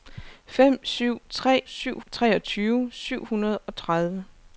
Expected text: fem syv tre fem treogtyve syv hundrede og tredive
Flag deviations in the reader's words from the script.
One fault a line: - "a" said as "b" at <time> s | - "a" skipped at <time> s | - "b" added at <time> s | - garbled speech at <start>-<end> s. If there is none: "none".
- "fem" said as "syv" at 1.7 s